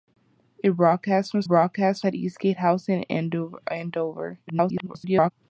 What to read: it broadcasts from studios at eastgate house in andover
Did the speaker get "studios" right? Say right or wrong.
wrong